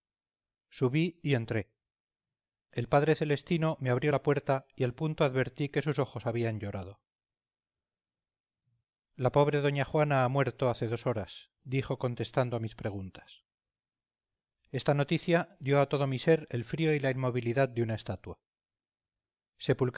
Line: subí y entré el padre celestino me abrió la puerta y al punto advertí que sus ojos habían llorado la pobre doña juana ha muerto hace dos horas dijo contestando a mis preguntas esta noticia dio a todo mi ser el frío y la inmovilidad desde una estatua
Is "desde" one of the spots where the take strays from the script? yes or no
yes